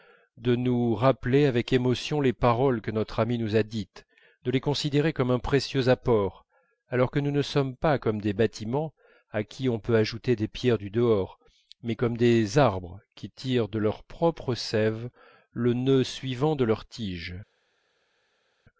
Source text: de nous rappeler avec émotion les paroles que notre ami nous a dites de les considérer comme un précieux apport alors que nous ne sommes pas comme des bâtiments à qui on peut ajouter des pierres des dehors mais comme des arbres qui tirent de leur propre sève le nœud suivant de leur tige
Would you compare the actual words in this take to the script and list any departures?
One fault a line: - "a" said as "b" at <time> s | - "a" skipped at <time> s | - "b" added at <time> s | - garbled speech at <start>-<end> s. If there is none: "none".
- "des" said as "du" at 10.8 s